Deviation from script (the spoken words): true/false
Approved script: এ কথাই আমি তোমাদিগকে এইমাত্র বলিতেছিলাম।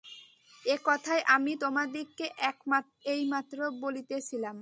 false